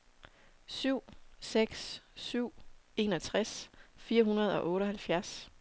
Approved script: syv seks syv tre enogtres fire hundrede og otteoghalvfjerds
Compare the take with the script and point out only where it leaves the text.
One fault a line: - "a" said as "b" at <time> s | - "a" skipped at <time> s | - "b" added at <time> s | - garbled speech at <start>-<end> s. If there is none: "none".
- "tre" skipped at 2.5 s